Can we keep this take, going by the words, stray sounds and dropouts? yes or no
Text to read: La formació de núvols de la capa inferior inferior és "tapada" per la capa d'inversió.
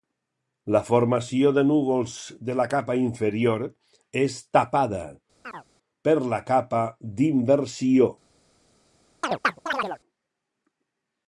no